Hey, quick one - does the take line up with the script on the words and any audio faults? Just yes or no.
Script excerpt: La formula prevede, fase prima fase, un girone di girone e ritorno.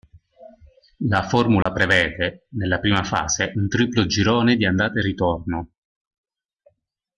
no